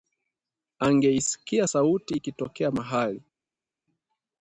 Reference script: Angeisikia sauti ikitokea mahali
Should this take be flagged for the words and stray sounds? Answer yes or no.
no